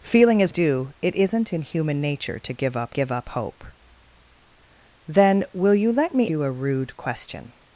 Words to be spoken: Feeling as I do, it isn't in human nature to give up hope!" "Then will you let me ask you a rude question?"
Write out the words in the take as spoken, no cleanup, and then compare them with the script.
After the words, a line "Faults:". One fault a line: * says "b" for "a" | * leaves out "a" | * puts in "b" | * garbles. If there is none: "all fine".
Feeling as do, it isn't in human nature to give up give up hope!" "Then will you let me you a rude question?"
Faults:
* leaves out "I"
* puts in "give up"
* leaves out "ask"